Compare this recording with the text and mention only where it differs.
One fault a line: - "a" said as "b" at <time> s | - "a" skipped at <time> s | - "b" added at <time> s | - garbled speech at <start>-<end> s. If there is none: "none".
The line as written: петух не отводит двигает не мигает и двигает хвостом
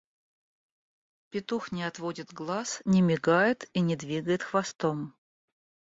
- "двигает" said as "глаз" at 2.3 s
- "не" added at 3.8 s